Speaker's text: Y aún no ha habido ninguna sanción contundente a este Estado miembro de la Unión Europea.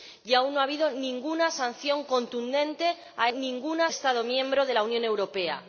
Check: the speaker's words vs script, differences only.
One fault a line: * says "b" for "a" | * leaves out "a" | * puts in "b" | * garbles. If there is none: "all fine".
* says "ninguna" for "este"